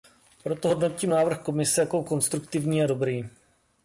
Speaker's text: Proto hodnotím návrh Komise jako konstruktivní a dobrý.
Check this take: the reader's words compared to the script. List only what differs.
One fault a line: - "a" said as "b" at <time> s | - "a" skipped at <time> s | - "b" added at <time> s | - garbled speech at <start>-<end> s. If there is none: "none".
none